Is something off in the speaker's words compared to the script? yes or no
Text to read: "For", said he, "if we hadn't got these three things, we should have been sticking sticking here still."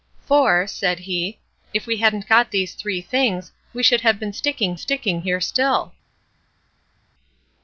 no